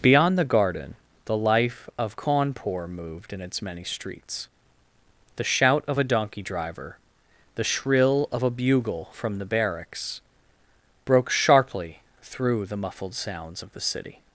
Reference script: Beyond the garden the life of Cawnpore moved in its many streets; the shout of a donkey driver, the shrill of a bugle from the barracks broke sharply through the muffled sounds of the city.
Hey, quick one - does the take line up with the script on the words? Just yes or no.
yes